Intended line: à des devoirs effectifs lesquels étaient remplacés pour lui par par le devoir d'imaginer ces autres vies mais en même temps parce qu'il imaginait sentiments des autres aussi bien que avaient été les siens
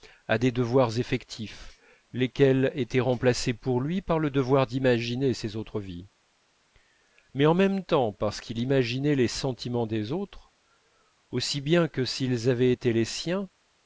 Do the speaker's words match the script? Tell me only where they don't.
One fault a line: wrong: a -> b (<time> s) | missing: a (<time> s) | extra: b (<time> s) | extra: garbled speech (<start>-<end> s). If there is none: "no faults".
missing: par (4.2 s)
extra: les (9.2 s)
extra: s'ils (12.0 s)